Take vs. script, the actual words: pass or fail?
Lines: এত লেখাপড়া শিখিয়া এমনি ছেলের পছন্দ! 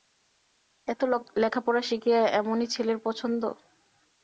pass